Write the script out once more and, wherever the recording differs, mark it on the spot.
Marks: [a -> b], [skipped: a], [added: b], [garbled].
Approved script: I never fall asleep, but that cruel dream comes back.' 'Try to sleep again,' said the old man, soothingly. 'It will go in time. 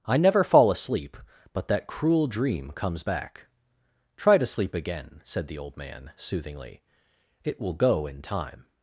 I never fall asleep, but that cruel dream comes back.' 'Try to sleep again,' said the old man, soothingly. 'It will go in time.